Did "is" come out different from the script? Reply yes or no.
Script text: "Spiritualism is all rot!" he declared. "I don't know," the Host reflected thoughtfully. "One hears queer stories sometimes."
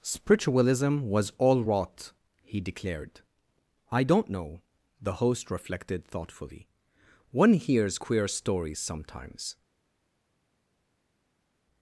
yes